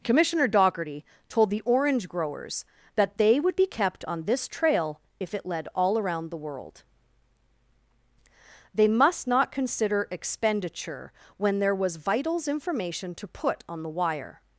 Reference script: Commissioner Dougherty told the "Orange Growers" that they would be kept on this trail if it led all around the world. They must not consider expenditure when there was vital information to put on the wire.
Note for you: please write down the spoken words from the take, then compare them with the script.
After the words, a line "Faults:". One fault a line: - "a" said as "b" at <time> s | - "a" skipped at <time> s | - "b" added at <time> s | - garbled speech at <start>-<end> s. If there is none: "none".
Commissioner Dougherty told the "Orange Growers" that they would be kept on this trail if it led all around the world. They must not consider expenditure when there was vitals information to put on the wire.
Faults:
- "vital" said as "vitals" at 12.0 s